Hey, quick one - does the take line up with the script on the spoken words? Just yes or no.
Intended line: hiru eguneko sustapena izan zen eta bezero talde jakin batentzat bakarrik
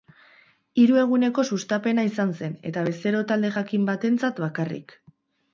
yes